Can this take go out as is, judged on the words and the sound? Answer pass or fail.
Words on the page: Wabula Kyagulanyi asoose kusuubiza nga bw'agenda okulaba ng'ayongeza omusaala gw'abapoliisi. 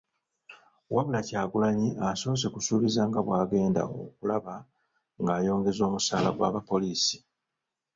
pass